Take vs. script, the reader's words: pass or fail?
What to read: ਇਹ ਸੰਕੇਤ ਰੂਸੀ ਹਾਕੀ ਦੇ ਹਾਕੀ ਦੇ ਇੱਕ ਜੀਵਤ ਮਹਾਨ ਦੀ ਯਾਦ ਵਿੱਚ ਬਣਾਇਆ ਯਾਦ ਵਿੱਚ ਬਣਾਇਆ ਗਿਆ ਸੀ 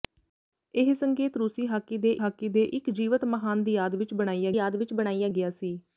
pass